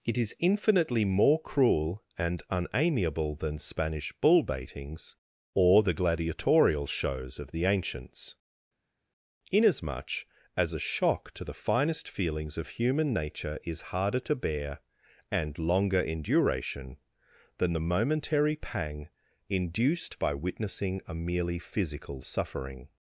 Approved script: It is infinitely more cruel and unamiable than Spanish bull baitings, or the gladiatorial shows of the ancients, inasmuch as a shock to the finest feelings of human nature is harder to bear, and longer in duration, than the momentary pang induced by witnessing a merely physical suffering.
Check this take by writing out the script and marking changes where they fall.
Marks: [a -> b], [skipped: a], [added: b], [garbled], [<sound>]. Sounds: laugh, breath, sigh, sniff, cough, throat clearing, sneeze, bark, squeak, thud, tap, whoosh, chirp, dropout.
It is infinitely more cruel and unamiable than Spanish bull baitings, or the gladiatorial shows of the ancients, inasmuch as a shock to the finest feelings of human nature is harder to bear, and longer in duration, than the momentary pang induced by witnessing a merely physical suffering.